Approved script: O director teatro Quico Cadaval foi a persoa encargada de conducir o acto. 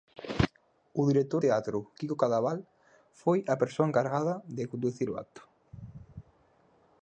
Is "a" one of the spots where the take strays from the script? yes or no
no